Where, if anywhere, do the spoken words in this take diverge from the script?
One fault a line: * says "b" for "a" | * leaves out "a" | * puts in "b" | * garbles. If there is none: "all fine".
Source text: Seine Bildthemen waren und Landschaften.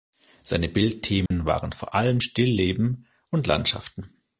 * puts in "vor allem Stillleben"